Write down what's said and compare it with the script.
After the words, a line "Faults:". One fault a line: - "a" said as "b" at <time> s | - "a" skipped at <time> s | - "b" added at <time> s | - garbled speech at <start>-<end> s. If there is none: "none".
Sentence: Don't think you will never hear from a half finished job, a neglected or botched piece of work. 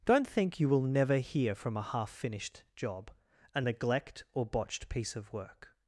Don't think you will never hear from a half finished job, a neglect or botched piece of work.
Faults:
- "neglected" said as "neglect" at 3.6 s